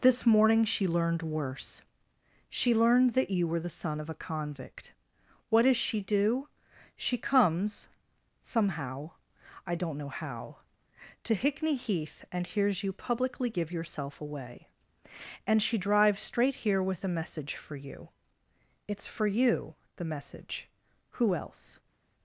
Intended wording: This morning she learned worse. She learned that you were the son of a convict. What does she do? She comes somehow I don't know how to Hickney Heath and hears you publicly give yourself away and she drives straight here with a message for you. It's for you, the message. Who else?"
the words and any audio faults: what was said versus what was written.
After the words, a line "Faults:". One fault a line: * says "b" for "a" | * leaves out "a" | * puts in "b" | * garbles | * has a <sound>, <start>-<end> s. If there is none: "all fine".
This morning she learned worse. She learned that you were the son of a convict. What does she do? She comes somehow I don't know how to Hickney Heath and hears you publicly give yourself away and she drives straight here with a message for you. It's for you, the message. Who else?"
Faults:
all fine